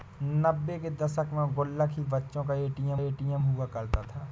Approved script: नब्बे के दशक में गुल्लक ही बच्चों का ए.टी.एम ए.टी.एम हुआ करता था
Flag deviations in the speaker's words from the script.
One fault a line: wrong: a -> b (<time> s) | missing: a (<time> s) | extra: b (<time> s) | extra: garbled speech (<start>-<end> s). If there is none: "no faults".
no faults